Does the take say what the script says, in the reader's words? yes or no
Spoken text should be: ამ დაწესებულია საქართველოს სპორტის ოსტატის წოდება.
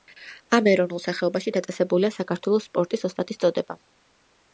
no